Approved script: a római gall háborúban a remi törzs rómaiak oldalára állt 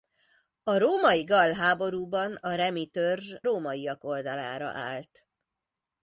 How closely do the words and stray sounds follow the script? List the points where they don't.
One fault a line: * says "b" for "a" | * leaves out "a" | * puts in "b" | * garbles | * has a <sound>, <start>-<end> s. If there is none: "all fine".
all fine